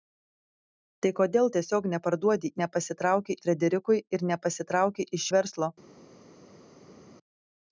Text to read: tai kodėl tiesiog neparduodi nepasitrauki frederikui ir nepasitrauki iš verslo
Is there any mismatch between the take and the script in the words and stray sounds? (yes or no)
no